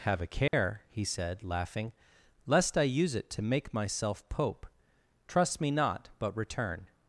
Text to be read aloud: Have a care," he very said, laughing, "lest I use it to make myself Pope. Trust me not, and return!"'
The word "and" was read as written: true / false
false